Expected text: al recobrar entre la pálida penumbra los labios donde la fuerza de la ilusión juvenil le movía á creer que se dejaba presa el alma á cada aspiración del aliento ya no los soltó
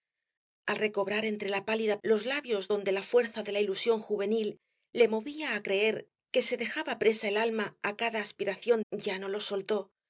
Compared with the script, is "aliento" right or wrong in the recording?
wrong